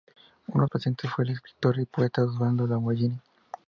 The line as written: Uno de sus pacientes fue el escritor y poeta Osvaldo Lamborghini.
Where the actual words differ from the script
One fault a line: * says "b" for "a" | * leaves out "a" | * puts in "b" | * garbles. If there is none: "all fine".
* leaves out "de sus"